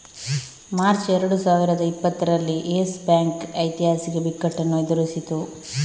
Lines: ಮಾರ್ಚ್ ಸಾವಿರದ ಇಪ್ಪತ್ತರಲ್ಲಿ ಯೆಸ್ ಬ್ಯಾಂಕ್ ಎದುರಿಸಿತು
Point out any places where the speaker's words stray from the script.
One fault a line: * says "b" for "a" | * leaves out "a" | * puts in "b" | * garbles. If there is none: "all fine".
* puts in "ಎರಡು"
* puts in "ಐತಿಹಾಸಿಕ ಬಿಕ್ಕಟ್ಟನ್ನು"